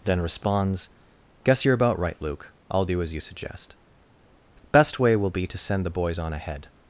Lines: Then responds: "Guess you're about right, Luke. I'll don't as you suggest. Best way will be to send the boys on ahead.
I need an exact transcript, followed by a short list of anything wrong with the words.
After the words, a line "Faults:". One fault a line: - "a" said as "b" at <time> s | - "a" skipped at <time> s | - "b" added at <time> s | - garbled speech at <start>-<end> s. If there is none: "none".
Then responds: "Guess you're about right, Luke. I'll do as you suggest. Best way will be to send the boys on ahead.
Faults:
- "don't" said as "do" at 2.8 s